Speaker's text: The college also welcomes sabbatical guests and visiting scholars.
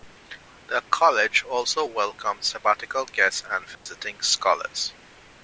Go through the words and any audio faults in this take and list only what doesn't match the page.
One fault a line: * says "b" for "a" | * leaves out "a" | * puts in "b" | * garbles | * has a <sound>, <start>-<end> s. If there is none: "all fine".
* has a dropout, 3.7-3.9 s